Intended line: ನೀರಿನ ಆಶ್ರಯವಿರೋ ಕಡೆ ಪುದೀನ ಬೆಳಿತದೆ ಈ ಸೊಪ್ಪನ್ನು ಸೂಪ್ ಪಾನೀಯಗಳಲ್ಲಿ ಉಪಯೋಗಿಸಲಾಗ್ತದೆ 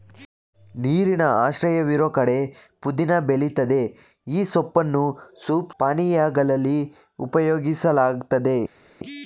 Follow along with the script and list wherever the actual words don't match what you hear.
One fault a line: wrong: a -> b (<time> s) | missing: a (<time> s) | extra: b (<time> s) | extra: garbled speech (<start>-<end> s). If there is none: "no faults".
no faults